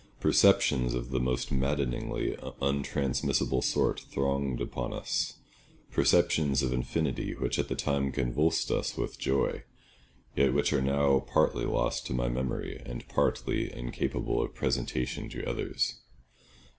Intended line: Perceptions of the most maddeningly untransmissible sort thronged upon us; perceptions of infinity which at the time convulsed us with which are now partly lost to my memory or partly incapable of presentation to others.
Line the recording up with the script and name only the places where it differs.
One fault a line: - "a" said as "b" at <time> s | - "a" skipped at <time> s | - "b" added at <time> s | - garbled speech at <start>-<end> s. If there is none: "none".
- "joy yet" added at 9.2 s
- "or" said as "and" at 12.8 s